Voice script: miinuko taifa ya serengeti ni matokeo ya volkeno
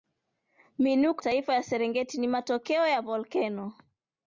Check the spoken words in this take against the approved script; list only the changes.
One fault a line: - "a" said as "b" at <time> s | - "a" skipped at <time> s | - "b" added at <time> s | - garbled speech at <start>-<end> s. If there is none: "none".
none